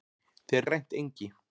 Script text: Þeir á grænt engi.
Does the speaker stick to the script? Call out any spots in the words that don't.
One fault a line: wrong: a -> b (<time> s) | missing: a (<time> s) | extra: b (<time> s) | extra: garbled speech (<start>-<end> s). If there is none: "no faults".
no faults